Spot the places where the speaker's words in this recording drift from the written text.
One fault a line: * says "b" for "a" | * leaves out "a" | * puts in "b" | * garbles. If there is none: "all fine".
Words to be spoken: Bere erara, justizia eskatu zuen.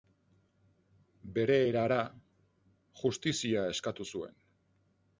all fine